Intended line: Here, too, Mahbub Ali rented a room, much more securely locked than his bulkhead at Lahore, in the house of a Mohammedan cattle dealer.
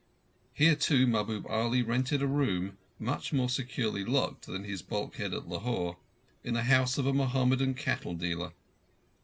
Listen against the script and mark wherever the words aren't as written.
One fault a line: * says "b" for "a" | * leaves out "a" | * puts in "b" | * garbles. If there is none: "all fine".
all fine